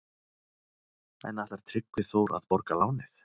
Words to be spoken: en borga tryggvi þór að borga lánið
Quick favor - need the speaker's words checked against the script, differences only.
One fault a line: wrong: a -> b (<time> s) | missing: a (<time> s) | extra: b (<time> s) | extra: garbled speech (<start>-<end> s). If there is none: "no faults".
wrong: borga -> ætlar (1.4 s)